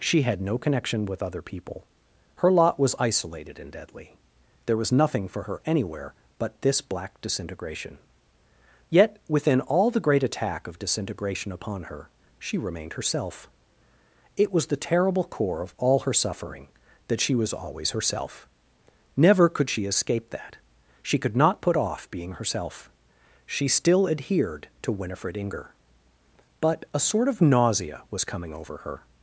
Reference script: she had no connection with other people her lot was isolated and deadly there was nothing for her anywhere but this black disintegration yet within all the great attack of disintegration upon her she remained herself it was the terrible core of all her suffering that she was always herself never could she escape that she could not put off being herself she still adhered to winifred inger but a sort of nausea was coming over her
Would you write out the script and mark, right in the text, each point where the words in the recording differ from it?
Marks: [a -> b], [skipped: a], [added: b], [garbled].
she had no connection with other people her lot was isolated and deadly there was nothing for her anywhere but this black disintegration yet within all the great attack of disintegration upon her she remained herself it was the terrible core of all her suffering that she was always herself never could she escape that she could not put off being herself she still adhered to winifred inger but a sort of nausea was coming over her